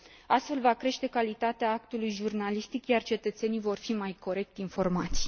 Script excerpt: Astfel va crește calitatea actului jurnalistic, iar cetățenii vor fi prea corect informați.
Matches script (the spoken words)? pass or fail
fail